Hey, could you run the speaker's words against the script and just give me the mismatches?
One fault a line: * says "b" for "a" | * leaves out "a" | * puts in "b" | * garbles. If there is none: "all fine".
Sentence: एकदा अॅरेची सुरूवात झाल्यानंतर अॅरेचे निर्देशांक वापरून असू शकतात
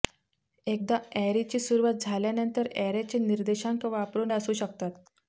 all fine